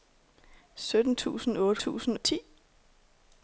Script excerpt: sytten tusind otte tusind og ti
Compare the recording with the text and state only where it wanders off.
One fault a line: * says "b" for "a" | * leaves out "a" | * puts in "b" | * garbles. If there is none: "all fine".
all fine